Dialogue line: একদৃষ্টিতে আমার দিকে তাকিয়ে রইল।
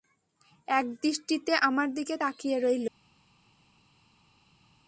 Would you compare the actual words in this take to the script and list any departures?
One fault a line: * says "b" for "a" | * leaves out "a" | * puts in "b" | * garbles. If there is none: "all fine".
all fine